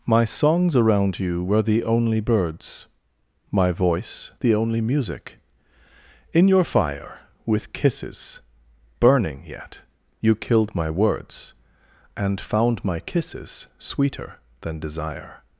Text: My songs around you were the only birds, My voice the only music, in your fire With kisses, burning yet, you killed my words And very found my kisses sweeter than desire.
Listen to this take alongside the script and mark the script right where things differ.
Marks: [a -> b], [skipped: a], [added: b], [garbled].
My songs around you were the only birds, My voice the only music, in your fire With kisses, burning yet, you killed my words And [skipped: very] found my kisses sweeter than desire.